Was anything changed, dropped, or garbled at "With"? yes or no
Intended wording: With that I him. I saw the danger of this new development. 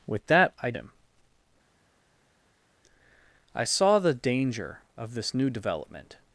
no